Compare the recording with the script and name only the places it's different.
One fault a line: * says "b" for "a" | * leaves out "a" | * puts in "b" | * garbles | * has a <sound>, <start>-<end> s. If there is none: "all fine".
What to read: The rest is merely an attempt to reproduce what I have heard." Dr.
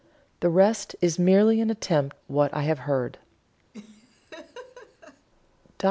* leaves out "to reproduce"
* has a laugh, 3.7-5.3 s